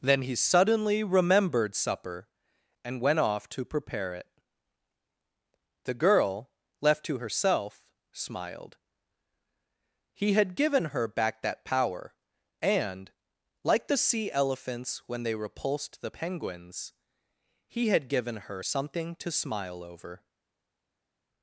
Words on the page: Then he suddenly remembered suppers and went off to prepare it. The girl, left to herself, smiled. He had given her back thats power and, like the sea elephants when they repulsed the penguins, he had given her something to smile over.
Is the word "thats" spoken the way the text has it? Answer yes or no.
no